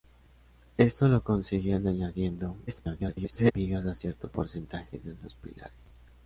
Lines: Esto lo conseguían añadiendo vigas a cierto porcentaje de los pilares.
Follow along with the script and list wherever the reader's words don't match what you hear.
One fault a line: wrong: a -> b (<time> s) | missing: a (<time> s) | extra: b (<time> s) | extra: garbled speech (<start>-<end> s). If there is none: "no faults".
extra: garbled speech (2.7-3.5 s)